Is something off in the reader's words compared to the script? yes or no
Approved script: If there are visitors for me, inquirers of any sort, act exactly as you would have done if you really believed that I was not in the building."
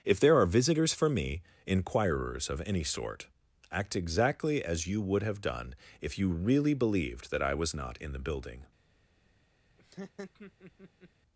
no